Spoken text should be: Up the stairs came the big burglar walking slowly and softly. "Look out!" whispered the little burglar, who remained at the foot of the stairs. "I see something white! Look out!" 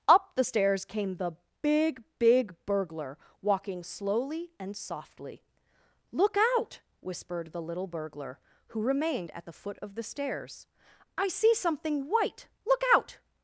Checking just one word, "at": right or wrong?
right